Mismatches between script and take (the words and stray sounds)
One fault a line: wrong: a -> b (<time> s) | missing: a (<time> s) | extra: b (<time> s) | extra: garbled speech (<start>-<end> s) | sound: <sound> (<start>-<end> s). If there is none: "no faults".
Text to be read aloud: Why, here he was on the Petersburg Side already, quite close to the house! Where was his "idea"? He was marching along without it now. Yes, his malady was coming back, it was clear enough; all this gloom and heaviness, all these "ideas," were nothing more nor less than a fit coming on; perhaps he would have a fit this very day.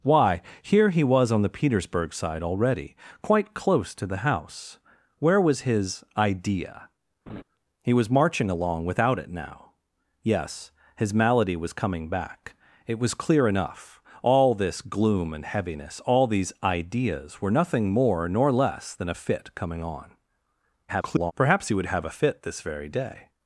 sound: laugh (7.3-7.4 s)
extra: garbled speech (20.9-21.3 s)